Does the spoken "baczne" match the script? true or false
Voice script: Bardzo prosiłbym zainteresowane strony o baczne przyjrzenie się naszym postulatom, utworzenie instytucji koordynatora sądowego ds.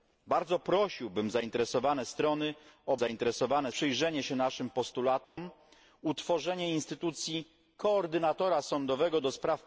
false